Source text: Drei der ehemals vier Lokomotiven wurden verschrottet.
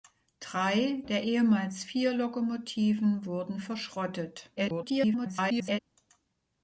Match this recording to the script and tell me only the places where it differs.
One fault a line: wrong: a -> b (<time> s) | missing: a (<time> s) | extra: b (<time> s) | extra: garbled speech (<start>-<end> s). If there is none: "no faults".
extra: garbled speech (4.6-5.8 s)